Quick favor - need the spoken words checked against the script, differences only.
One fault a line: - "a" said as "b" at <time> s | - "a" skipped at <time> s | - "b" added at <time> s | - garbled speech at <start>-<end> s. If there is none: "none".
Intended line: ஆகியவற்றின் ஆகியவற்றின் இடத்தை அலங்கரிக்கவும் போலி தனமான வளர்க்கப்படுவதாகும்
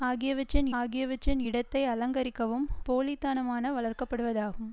none